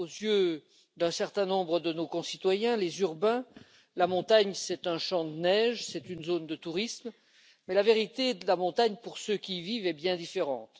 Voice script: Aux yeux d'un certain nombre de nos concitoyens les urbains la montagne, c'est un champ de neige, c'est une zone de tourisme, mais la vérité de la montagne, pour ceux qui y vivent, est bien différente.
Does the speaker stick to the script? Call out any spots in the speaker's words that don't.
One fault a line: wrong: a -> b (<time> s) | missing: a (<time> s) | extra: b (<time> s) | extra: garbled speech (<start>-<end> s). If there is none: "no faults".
no faults